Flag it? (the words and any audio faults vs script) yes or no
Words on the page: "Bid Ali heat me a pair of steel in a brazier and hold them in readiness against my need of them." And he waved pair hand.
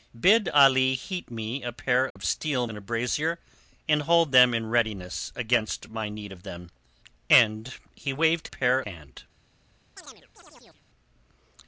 yes